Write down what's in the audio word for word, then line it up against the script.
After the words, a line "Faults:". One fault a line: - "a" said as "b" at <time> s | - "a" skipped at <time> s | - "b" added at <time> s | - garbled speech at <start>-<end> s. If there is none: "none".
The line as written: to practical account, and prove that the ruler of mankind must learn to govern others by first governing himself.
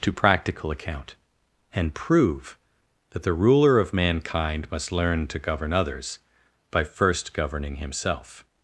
to practical account, and prove that the ruler of mankind must learn to govern others by first governing himself.
Faults:
none